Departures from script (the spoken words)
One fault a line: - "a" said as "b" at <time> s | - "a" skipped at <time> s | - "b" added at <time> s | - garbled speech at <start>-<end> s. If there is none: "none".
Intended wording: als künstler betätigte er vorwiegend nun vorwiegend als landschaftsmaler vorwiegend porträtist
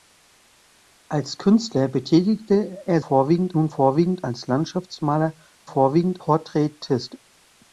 none